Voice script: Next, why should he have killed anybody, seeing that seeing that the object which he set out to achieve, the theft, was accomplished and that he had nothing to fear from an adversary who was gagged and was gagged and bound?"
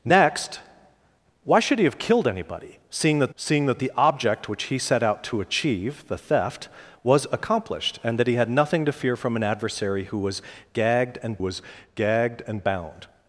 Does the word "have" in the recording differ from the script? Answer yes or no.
no